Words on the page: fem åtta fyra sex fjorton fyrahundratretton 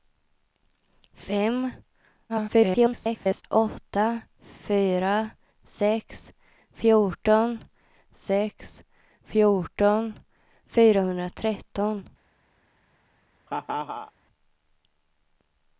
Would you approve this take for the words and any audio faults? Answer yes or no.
no